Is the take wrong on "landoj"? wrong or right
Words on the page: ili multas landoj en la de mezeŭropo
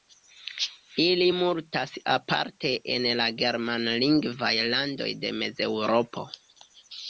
wrong